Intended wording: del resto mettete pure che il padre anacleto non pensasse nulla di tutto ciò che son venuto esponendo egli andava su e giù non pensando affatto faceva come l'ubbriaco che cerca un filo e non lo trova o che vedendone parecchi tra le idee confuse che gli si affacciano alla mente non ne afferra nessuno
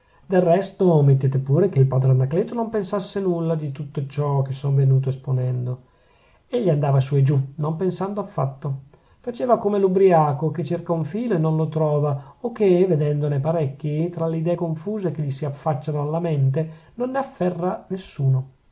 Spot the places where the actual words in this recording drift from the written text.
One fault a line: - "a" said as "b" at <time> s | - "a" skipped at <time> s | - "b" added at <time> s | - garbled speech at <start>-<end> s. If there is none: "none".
none